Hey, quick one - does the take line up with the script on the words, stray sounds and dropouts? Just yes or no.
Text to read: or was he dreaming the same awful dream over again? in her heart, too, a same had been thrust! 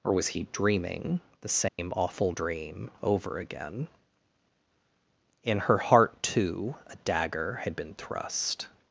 no